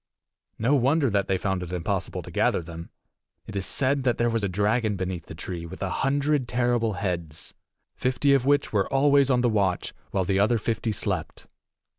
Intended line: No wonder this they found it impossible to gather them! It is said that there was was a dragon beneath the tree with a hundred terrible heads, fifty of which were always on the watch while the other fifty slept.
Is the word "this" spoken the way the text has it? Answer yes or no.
no